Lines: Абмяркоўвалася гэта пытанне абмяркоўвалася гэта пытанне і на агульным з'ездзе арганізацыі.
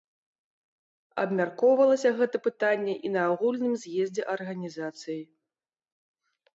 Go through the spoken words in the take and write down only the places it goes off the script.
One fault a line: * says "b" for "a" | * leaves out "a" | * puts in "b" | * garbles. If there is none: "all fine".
* leaves out "абмяркоўвалася гэта пытанне"